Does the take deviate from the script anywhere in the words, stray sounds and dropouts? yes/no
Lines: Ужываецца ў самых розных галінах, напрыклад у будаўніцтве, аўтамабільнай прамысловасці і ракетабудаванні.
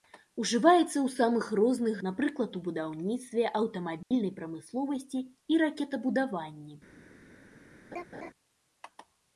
yes